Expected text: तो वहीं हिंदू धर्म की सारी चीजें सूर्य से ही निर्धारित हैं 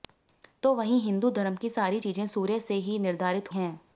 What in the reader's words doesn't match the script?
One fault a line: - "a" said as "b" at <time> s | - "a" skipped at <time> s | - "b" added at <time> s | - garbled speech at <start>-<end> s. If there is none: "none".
none